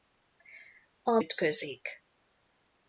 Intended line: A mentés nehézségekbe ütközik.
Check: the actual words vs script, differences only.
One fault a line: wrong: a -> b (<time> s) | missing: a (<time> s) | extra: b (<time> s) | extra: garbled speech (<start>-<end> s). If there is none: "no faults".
missing: mentés nehézségekbe (1.2 s)